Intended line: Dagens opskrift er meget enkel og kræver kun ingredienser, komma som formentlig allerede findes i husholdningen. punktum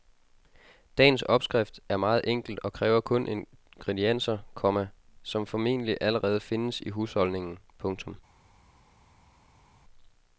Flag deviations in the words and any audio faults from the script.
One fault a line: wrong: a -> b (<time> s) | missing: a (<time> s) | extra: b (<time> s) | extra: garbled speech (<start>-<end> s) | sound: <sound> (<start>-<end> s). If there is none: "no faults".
no faults